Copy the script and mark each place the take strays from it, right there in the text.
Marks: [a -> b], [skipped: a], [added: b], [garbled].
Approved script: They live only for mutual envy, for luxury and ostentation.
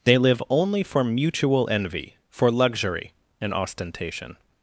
They live only for mutual envy, for luxury and ostentation.